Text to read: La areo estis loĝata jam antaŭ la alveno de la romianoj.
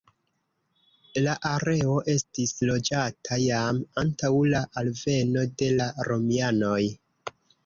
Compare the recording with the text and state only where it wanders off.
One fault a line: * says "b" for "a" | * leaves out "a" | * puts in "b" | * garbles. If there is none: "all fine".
all fine